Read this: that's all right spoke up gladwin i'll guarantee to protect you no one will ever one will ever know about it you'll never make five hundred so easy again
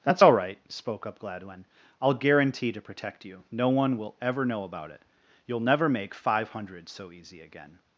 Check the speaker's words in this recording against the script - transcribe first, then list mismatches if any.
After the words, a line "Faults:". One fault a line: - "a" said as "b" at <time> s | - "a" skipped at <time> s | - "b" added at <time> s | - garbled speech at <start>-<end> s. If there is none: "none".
that's all right spoke up gladwin i'll guarantee to protect you no one will ever know about it you'll never make five hundred so easy again
Faults:
- "one will ever" skipped at 4.4 s